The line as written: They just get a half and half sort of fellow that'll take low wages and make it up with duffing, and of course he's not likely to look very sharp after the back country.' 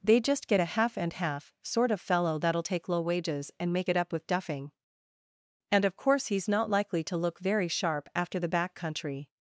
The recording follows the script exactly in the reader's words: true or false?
true